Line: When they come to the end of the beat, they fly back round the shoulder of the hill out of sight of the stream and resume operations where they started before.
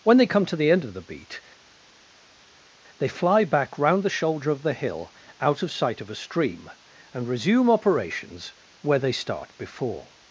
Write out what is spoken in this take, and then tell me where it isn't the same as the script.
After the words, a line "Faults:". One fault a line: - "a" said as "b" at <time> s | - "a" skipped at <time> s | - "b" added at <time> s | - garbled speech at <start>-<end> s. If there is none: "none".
When they come to the end of the beat, they fly back round the shoulder of the hill out of sight of a stream and resume operations where they start before.
Faults:
- "the" said as "a" at 6.1 s
- "started" said as "start" at 9.1 s